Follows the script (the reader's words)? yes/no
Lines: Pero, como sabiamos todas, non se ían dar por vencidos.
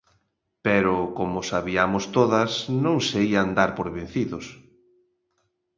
yes